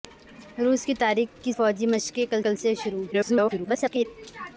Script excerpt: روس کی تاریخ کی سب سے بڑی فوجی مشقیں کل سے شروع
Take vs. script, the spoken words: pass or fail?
fail